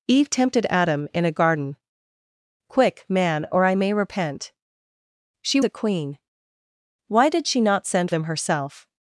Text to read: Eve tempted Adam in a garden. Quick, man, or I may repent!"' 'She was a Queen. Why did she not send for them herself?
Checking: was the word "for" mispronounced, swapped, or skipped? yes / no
yes